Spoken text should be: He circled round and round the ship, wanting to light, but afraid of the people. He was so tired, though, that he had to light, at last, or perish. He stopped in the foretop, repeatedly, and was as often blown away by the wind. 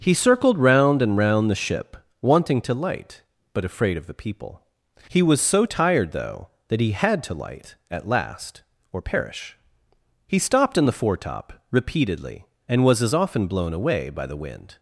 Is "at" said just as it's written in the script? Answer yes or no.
yes